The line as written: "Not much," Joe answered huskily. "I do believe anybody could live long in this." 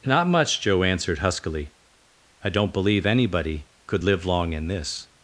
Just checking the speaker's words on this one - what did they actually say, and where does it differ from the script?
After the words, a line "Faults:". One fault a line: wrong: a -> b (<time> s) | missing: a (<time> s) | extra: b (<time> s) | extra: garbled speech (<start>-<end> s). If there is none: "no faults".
"Not much," Joe answered huskily. "I don't believe anybody could live long in this."
Faults:
wrong: do -> don't (2.5 s)